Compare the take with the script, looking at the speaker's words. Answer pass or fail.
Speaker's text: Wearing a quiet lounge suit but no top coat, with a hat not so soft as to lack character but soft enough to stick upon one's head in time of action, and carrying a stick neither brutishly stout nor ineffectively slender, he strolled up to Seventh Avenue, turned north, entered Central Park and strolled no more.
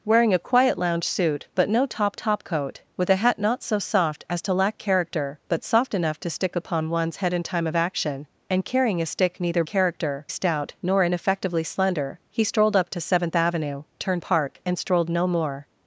fail